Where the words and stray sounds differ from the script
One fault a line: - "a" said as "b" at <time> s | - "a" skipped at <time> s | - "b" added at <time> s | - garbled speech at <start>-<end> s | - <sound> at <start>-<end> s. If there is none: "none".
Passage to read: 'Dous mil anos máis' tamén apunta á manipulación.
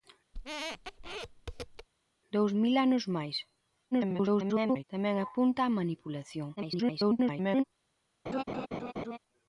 - squeak at 0.3-1.9 s
- garbled speech at 3.9-4.8 s
- garbled speech at 6.6-7.6 s
- laugh at 8.3-9.2 s